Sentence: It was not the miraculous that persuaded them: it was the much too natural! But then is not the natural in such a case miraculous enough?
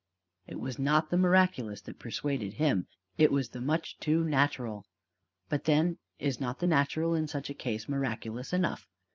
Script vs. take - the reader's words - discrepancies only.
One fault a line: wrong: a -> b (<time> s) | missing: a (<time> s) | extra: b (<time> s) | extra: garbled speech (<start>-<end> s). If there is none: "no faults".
wrong: them -> him (2.5 s)